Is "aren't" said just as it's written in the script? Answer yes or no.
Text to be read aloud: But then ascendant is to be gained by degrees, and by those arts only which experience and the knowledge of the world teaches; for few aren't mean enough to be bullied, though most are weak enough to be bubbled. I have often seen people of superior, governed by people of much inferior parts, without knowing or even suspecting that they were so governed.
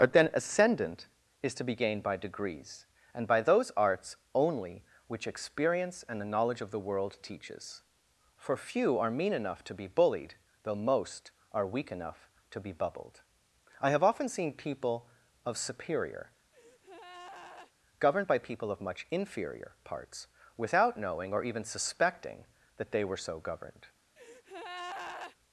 no